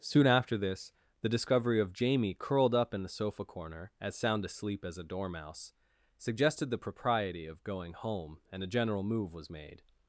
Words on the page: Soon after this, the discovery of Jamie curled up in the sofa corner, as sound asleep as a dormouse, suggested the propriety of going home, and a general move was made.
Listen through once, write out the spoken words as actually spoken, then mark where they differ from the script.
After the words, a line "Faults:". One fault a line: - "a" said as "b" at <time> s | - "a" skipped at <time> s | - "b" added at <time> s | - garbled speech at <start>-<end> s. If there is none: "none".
Soon after this, the discovery of Jamie curled up in the sofa corner, as sound asleep as a dormouse, suggested the propriety of going home, and a general move was made.
Faults:
none